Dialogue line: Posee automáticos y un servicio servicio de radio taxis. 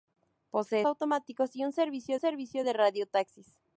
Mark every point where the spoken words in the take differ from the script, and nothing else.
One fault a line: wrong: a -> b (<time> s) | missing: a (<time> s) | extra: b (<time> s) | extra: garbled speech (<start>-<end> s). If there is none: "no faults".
no faults